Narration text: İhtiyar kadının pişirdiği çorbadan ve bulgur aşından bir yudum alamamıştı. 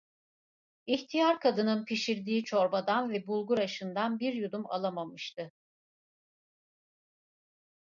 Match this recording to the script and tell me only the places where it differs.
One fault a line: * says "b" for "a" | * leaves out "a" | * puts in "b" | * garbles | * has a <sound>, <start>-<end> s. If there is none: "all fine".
all fine